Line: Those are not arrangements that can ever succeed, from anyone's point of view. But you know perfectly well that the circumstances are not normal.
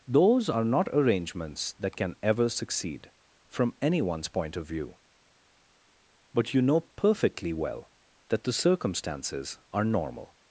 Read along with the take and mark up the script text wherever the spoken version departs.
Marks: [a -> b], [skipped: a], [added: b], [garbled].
Those are not arrangements that can ever succeed, from anyone's point of view. But you know perfectly well that the circumstances are [skipped: not] normal.